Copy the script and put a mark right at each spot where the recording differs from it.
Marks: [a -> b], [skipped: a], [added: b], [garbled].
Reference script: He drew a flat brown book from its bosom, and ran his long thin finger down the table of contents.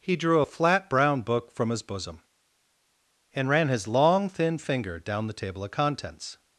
He drew a flat brown book from [its -> his] bosom, and ran his long thin finger down the table of contents.